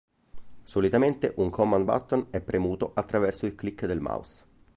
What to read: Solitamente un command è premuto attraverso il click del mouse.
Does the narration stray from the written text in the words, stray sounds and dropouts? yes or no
yes